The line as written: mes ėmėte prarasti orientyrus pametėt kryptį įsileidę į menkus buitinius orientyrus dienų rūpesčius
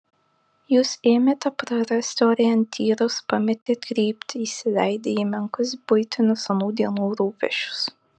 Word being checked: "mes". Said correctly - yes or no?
no